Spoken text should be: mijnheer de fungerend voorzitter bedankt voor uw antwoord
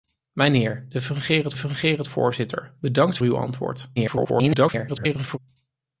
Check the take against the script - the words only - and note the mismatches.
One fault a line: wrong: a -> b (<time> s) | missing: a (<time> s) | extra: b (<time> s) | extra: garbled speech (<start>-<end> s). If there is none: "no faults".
extra: fungerend (1.5 s)
missing: voor (3.2 s)
extra: garbled speech (4.0-5.4 s)